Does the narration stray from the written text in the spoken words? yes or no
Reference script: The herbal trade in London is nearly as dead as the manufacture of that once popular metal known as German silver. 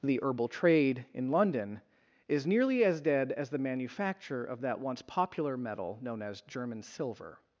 no